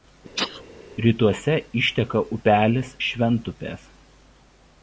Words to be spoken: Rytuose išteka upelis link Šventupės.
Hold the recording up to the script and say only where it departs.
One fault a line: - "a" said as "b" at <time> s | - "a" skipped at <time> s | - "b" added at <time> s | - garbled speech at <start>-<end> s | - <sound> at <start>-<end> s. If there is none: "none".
- sneeze at 0.4-0.6 s
- "link" skipped at 3.0 s